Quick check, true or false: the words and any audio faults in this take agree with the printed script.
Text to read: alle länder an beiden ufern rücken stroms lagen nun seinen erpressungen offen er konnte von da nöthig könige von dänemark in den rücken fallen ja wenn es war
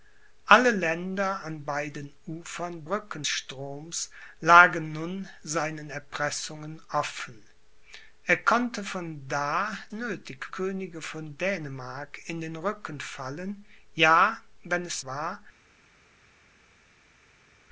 true